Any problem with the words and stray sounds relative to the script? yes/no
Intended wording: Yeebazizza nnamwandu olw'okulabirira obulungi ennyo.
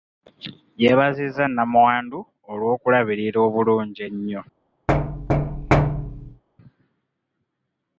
yes